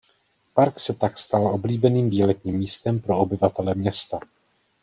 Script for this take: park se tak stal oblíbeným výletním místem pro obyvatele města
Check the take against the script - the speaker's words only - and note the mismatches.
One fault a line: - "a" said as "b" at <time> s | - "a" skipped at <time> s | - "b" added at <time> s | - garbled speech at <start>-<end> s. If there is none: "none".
none